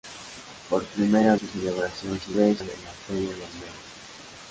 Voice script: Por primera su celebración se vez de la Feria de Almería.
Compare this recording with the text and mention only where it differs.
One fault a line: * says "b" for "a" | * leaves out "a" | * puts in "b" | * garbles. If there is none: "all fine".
all fine